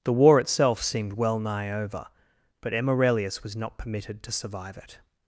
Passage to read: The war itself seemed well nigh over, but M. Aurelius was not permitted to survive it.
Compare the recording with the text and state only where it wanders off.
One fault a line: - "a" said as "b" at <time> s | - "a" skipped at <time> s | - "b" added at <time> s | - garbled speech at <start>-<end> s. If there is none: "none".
none